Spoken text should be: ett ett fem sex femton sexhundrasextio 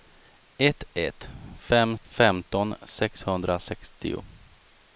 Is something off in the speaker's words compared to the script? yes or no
yes